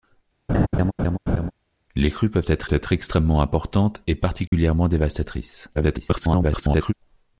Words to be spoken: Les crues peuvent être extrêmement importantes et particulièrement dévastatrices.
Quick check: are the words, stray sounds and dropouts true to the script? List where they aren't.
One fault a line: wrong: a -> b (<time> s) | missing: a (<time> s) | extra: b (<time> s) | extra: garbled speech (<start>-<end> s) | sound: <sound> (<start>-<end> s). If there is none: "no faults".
sound: laugh (0.5-1.5 s)
extra: être (2.7 s)
sound: dropout (4.5-4.5 s)
extra: garbled speech (5.7-6.9 s)